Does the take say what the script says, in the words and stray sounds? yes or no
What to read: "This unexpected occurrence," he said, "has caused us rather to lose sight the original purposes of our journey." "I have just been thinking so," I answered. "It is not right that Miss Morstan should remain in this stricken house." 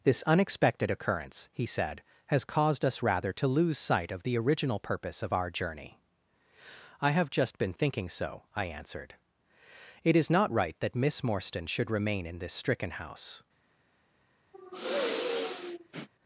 no